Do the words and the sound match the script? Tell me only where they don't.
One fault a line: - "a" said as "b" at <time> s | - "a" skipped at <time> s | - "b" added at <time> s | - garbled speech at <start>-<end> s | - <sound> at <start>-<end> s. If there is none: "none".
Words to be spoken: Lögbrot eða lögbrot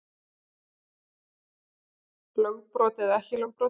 - "ekki" added at 3.2 s